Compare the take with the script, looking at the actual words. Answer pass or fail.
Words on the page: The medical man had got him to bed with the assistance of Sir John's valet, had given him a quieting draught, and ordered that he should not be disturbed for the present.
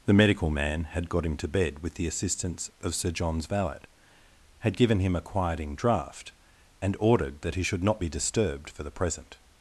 pass